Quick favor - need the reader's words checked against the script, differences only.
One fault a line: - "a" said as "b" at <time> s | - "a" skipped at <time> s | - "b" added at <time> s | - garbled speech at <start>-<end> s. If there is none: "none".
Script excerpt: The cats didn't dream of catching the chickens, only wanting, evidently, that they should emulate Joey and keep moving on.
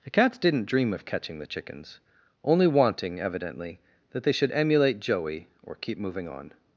- "and" said as "or" at 5.6 s